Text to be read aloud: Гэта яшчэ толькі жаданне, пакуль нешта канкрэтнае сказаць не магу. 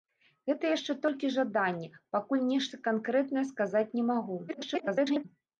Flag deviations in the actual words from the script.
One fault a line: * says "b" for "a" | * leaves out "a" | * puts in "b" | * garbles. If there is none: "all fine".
* garbles